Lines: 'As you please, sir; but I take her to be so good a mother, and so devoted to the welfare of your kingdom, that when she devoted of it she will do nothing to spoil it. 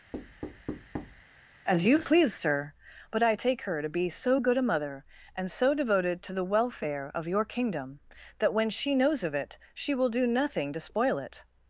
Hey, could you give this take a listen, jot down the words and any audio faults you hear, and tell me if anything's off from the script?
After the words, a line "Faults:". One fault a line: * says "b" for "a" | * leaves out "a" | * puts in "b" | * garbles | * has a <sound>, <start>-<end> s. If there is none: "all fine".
'As you please, sir; but I take her to be so good a mother, and so devoted to the welfare of your kingdom, that when she knows of it she will do nothing to spoil it.
Faults:
* has a thud, 0.1-1.2 s
* says "knows" for "devoted"